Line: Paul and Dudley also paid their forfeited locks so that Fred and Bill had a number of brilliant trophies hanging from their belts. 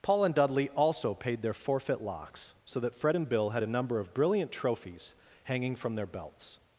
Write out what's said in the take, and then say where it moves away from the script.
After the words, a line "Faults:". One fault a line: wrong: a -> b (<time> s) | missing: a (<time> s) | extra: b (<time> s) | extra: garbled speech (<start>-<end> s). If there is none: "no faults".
Paul and Dudley also paid their forfeit locks so that Fred and Bill had a number of brilliant trophies hanging from their belts.
Faults:
wrong: forfeited -> forfeit (1.5 s)